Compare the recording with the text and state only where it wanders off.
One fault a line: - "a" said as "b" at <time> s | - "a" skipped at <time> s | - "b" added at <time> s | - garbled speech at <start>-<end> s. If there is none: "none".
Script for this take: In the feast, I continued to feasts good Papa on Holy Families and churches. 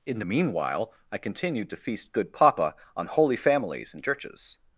- "feast" said as "meanwhile" at 0.2 s
- "feasts" said as "feast" at 1.8 s